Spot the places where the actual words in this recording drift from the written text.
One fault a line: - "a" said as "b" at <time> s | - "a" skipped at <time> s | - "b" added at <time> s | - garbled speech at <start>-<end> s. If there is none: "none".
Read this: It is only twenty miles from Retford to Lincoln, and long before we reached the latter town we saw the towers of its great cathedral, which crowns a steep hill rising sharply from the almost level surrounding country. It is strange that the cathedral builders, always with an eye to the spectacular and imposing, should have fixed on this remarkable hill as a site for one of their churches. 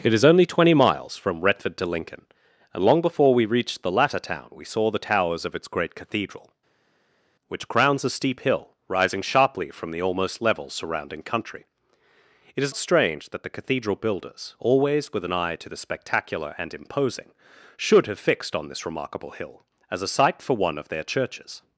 none